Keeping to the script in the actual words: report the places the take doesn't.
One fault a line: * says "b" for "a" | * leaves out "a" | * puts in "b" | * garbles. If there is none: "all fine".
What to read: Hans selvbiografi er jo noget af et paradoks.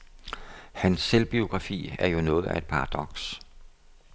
all fine